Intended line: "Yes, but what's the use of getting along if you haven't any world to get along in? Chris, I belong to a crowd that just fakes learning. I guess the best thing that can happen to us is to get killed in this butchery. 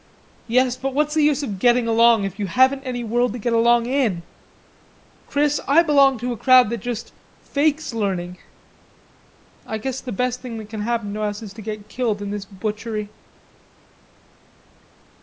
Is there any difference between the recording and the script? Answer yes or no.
no